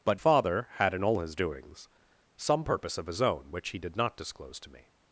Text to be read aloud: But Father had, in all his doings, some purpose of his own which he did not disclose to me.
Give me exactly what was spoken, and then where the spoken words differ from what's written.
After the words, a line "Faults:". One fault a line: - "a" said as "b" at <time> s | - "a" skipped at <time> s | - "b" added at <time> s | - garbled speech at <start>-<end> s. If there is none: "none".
But Father had, in all his doings, some purpose of his own which he did not disclose to me.
Faults:
none